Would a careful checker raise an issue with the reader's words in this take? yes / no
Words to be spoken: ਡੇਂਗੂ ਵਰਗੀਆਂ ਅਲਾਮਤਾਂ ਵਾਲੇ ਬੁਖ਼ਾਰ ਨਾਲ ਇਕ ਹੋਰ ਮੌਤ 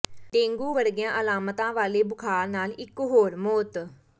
no